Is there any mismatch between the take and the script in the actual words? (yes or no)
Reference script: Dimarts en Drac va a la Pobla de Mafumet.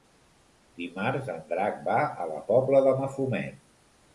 no